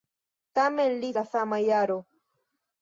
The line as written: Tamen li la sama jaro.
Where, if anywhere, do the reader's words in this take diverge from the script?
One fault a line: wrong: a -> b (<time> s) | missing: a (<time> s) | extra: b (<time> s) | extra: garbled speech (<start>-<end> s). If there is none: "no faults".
no faults